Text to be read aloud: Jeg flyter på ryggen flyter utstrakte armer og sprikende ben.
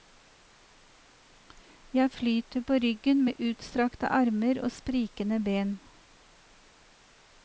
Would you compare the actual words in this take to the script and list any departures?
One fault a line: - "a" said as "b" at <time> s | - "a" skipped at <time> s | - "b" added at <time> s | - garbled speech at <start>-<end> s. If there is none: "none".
- "flyter" said as "med" at 3.2 s